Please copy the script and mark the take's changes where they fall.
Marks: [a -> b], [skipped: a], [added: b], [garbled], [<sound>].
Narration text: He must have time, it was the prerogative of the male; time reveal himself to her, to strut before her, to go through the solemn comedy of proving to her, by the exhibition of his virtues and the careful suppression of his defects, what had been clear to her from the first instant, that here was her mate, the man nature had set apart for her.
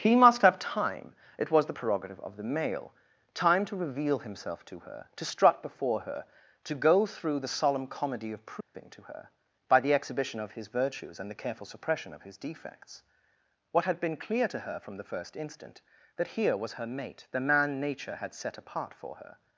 He must have time, it was the prerogative of the male; time [added: to] reveal himself to her, to strut before her, to go through the solemn comedy of proving [dropout] to her, by the exhibition of his virtues and the careful suppression of his defects, what had been clear to her from the first instant, that here was her mate, the man nature had set apart for her.